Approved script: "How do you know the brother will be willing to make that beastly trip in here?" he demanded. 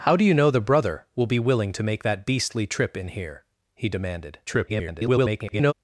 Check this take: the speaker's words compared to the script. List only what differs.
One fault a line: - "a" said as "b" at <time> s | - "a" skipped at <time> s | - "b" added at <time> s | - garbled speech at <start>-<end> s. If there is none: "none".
- garbled speech at 4.5-5.7 s